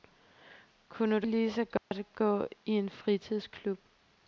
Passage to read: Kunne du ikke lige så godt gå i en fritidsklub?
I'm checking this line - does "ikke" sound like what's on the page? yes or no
no